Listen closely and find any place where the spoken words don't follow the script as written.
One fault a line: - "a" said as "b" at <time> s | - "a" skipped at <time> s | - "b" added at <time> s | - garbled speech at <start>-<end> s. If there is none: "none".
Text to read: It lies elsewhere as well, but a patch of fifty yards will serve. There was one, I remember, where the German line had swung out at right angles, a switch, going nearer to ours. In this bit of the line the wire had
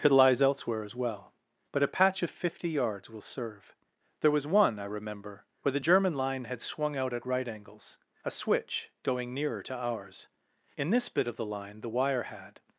none